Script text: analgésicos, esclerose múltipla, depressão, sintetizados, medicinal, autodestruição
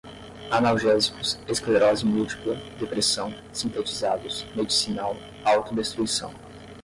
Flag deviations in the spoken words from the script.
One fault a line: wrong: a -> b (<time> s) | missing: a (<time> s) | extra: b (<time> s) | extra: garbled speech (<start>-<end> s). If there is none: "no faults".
no faults